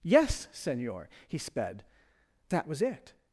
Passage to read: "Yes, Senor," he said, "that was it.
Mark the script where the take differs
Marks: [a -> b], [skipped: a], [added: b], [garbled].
"Yes, Senor," he [said, -> sped] "that was it.